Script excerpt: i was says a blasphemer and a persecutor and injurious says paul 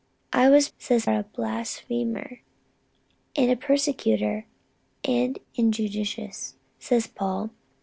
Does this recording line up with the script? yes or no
yes